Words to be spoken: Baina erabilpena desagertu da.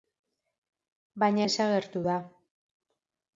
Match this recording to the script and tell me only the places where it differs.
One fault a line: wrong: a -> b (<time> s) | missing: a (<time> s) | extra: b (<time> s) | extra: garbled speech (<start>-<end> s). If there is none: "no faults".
missing: erabilpena (1.4 s)